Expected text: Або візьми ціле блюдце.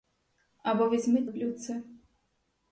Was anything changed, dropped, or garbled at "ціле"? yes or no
yes